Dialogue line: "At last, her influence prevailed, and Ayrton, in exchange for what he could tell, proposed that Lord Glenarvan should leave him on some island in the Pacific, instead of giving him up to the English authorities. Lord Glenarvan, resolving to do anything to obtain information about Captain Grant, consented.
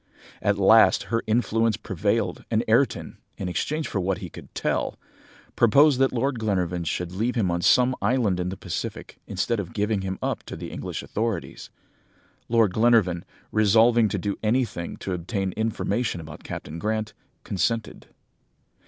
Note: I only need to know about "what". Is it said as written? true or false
true